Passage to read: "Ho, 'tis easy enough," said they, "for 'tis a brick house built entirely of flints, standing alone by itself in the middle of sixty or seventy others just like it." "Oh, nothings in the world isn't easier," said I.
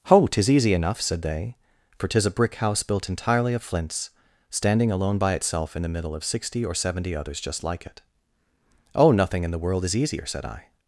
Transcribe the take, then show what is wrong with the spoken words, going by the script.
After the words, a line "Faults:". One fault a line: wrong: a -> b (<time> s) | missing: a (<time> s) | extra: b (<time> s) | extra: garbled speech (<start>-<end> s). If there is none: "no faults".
"Ho, 'tis easy enough," said they, "for 'tis a brick house built entirely of flints, standing alone by itself in the middle of sixty or seventy others just like it." "Oh, nothing in the world is easier," said I.
Faults:
wrong: nothings -> nothing (9.1 s)
wrong: isn't -> is (9.8 s)